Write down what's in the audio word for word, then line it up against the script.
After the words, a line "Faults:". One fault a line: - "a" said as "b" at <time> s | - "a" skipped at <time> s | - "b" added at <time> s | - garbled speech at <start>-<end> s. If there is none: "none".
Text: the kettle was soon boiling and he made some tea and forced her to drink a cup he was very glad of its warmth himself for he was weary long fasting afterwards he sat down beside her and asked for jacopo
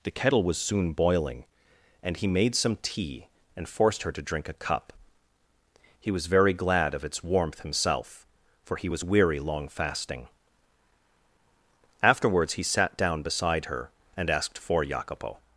the kettle was soon boiling and he made some tea and forced her to drink a cup he was very glad of its warmth himself for he was weary long fasting afterwards he sat down beside her and asked for jacopo
Faults:
none